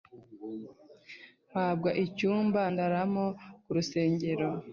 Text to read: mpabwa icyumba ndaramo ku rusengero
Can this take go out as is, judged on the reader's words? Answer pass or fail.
pass